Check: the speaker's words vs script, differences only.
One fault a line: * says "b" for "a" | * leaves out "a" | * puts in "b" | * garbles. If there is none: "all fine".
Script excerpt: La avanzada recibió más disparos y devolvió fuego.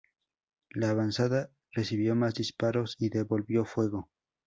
all fine